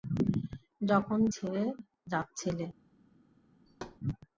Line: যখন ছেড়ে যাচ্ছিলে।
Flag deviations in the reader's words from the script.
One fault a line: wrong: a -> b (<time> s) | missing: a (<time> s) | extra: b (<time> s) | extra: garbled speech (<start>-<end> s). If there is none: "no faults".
no faults